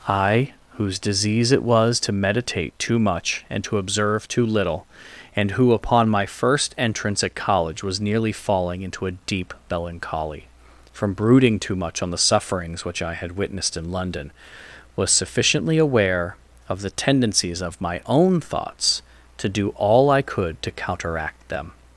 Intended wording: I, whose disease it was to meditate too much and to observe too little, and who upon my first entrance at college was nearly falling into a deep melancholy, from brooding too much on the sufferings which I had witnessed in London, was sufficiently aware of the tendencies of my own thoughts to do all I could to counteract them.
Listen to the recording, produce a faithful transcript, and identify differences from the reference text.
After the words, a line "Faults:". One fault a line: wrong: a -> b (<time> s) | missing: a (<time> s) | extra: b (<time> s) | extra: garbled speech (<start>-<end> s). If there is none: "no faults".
I, whose disease it was to meditate too much and to observe too little, and who upon my first entrance at college was nearly falling into a deep melancholy, from brooding too much on the sufferings which I had witnessed in London, was sufficiently aware of the tendencies of my own thoughts to do all I could to counteract them.
Faults:
no faults